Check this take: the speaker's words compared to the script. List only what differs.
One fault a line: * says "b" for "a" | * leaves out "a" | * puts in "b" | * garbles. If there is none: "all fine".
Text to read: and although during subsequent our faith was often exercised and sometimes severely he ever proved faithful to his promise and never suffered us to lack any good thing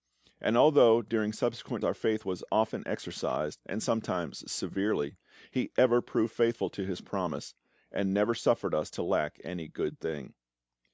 all fine